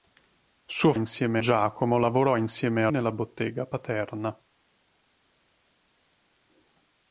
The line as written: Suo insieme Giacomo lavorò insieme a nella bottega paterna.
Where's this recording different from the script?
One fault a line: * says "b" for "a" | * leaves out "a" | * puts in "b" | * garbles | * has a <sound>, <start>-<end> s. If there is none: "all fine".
all fine